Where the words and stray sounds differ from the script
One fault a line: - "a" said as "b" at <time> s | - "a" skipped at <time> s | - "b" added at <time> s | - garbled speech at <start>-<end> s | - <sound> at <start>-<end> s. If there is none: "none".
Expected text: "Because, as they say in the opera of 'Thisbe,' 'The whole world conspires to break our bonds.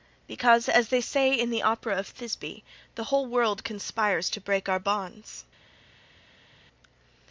none